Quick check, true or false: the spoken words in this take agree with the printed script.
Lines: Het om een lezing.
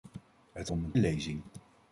true